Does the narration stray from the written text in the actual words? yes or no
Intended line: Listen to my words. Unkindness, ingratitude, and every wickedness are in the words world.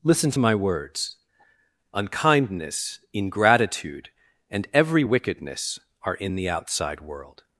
yes